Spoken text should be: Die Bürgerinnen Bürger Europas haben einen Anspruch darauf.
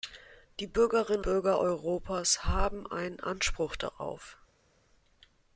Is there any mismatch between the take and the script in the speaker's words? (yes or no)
no